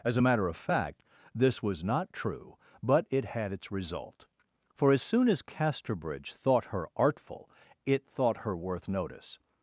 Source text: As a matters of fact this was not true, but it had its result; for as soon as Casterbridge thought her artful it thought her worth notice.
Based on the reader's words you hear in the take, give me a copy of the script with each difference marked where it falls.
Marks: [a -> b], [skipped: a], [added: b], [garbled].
As a [matters -> matter] of fact this was not true, but it had its result; for as soon as Casterbridge thought her artful it thought her worth notice.